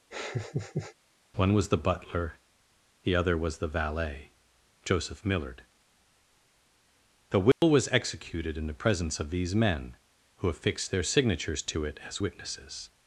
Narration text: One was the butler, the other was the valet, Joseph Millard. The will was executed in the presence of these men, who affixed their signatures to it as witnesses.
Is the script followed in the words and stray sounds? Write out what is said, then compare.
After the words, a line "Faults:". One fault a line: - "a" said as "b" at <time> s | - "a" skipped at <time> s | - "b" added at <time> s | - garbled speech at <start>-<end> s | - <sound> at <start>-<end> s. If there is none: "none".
One was the butler, the other was the valet, Joseph Millard. The will was executed in the presence of these men, who affixed their signatures to it as witnesses.
Faults:
- laugh at 0.1-1.0 s
- dropout at 7.5-7.6 s